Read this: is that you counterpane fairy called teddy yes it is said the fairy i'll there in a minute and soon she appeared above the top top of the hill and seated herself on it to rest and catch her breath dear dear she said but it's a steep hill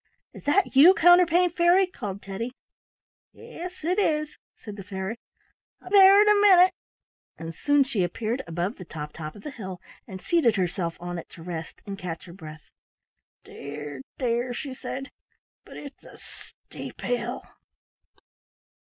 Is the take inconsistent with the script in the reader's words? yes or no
no